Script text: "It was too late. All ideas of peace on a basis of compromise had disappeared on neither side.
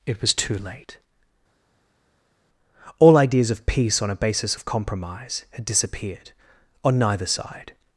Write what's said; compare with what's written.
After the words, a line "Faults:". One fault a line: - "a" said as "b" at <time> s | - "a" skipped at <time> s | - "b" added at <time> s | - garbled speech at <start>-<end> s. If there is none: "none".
"It was too late. All ideas of peace on a basis of compromise had disappeared on neither side.
Faults:
none